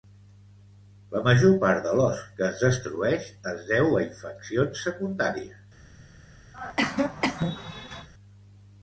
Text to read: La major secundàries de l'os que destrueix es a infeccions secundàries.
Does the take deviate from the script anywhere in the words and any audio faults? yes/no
yes